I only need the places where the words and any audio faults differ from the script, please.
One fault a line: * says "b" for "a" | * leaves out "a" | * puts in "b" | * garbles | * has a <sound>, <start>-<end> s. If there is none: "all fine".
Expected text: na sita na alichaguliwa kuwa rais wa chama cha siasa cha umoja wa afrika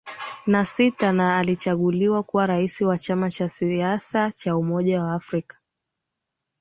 all fine